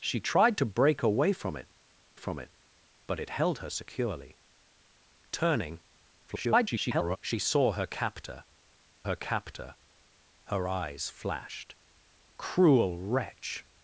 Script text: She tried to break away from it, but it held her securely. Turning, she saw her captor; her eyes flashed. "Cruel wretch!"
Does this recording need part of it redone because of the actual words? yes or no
yes